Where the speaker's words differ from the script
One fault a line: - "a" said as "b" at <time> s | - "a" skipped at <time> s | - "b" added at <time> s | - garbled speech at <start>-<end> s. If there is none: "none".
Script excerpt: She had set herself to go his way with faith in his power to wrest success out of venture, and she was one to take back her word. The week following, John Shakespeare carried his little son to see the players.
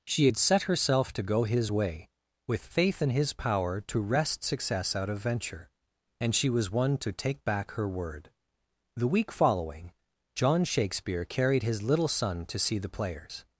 none